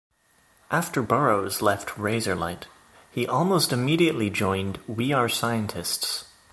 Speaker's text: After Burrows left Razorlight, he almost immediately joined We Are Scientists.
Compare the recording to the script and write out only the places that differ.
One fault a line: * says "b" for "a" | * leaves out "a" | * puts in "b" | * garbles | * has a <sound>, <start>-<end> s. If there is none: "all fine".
all fine